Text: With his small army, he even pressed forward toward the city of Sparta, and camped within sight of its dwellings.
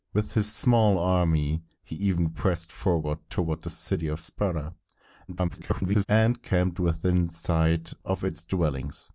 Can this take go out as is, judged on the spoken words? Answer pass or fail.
fail